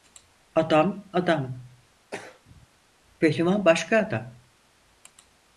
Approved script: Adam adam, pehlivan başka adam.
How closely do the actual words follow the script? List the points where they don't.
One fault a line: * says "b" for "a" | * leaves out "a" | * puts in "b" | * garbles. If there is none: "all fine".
all fine